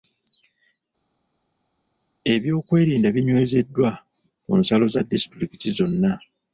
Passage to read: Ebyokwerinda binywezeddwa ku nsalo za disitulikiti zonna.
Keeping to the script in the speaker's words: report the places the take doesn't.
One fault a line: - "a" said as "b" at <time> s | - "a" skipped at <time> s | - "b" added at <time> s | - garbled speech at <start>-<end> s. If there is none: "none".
none